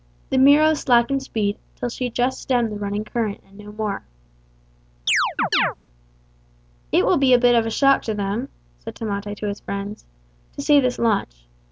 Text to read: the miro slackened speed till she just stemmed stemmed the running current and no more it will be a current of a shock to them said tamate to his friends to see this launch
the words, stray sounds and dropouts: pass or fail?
fail